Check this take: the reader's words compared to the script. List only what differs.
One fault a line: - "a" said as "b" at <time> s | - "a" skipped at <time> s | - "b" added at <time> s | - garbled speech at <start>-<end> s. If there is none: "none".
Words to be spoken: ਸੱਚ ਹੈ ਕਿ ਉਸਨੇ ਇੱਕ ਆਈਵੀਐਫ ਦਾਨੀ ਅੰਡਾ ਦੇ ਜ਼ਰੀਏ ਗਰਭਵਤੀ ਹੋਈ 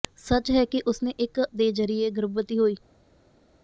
- "ਆਈਵੀਐਫ ਦਾਨੀ ਅੰਡਾ" skipped at 1.4 s